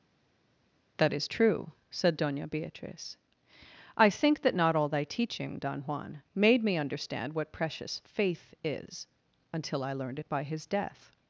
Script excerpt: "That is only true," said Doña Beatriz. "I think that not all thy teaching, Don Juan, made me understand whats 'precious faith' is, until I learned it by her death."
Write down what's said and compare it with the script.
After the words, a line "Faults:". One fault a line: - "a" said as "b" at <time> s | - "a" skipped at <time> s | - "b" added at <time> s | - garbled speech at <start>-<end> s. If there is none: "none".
"That is true," said Doña Beatriz. "I think that not all thy teaching, Don Juan, made me understand what 'precious faith' is, until I learned it by his death."
Faults:
- "only" skipped at 1.3 s
- "whats" said as "what" at 7.3 s
- "her" said as "his" at 10.4 s